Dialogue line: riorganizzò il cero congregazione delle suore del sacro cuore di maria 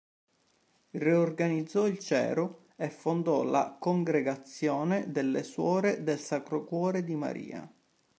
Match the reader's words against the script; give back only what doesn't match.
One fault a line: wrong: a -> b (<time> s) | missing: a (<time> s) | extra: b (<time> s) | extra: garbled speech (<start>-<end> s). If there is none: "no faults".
extra: e fondò la (2.8 s)